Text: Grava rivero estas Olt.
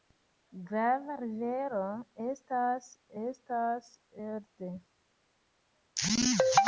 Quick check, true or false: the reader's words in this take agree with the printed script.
false